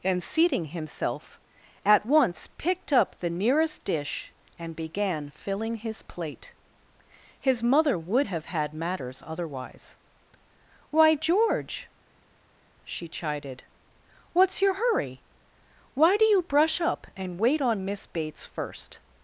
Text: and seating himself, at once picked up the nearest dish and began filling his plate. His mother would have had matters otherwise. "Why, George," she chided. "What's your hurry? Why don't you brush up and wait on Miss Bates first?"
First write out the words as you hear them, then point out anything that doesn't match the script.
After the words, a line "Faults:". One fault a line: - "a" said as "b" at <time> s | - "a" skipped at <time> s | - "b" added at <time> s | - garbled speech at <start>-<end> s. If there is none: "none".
and seating himself, at once picked up the nearest dish and began filling his plate. His mother would have had matters otherwise. "Why, George," she chided. "What's your hurry? Why do you brush up and wait on Miss Bates first?"
Faults:
- "don't" said as "do" at 16.2 s